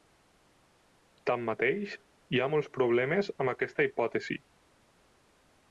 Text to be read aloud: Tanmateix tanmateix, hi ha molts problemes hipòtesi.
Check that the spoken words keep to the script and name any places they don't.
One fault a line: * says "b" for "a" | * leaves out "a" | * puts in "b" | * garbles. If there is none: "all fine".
* leaves out "tanmateix"
* puts in "amb aquesta"